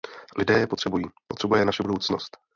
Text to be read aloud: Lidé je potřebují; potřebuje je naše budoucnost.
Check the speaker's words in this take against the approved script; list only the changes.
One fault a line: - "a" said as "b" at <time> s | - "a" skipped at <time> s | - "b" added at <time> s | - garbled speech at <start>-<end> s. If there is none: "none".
none